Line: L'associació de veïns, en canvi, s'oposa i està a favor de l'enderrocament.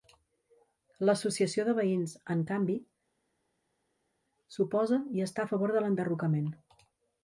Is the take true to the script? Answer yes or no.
yes